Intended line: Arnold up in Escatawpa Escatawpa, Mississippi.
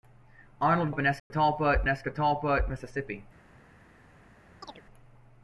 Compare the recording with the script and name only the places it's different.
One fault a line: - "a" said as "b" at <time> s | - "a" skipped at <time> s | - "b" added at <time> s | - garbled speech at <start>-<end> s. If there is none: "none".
none